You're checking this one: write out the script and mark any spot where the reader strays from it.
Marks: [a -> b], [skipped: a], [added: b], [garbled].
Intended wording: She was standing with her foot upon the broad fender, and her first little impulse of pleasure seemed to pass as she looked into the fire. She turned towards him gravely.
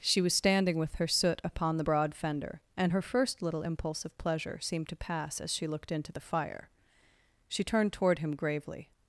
She was standing with her [foot -> soot] upon the broad fender, and her first little impulse of pleasure seemed to pass as she looked into the fire. She turned [towards -> toward] him gravely.